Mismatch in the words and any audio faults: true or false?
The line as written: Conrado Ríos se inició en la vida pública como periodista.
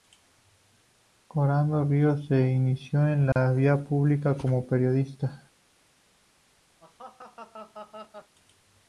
true